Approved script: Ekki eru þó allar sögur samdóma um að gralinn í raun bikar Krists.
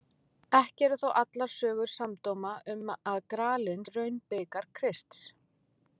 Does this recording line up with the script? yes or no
yes